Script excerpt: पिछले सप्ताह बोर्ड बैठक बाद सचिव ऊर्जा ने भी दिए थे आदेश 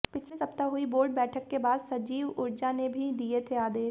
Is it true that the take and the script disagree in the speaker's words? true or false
true